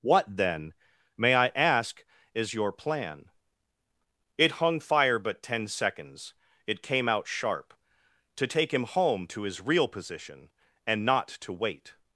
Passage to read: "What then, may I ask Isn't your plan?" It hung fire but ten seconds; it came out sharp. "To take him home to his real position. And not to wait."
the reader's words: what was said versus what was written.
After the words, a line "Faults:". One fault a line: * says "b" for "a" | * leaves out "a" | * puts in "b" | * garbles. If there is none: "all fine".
"What then, may I ask IS your plan?" It hung fire but ten seconds; it came out sharp. "To take him home to his real position. And not to wait."
Faults:
* says "IS" for "Isn't"